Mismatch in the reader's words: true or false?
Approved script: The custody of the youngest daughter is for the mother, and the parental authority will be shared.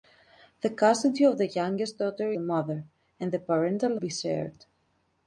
true